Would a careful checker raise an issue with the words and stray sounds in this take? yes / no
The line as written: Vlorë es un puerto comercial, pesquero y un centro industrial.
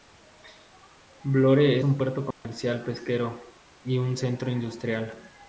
yes